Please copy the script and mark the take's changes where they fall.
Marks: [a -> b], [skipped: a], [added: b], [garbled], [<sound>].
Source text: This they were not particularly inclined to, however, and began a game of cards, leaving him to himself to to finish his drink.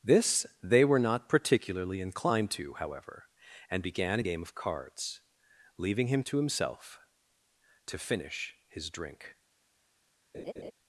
This they were not particularly inclined to, however, and began a game of cards, leaving him to himself to [skipped: to] finish his drink. [laugh]